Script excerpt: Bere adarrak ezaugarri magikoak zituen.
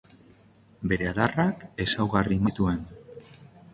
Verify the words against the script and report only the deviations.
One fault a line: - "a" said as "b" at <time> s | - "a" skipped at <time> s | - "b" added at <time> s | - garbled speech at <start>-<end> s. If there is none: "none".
- "magikoak" skipped at 2.4 s